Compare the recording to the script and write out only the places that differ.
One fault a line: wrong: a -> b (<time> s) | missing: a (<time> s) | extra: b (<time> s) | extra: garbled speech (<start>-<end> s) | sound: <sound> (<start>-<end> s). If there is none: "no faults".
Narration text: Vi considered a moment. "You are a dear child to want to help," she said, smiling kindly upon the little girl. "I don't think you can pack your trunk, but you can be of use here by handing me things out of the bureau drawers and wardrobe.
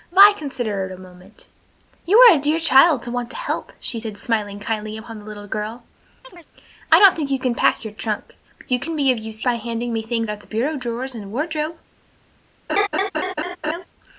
sound: chirp (6.2-6.5 s)
missing: here (9.4 s)
missing: out (10.3 s)
sound: laugh (12.7-13.9 s)